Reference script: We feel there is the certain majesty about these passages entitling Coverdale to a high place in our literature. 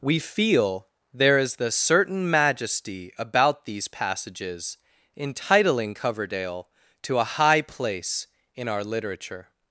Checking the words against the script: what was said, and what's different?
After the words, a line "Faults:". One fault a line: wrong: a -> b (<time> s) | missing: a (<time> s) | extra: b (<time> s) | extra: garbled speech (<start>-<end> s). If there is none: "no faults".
We feel there is the certain majesty about these passages entitling Coverdale to a high place in our literature.
Faults:
no faults